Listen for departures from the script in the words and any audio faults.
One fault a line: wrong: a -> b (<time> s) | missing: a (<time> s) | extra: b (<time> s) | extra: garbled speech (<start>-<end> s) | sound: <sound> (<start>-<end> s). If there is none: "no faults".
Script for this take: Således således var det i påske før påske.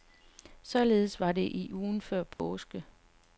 missing: således (1.2 s)
wrong: påske -> ugen (1.7 s)
sound: dropout (2.3-2.4 s)